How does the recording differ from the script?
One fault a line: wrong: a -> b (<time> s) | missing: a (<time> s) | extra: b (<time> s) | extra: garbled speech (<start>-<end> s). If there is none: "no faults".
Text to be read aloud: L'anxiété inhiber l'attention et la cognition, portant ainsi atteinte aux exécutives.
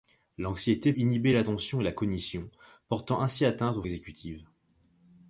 no faults